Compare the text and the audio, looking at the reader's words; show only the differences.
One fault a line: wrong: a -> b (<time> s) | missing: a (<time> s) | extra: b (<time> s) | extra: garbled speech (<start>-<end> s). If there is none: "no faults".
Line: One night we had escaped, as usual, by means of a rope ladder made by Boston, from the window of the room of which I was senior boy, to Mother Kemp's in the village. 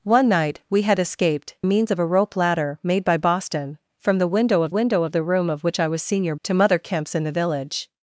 missing: as usual by (1.6 s)
extra: window of (4.7 s)
missing: boy (6.4 s)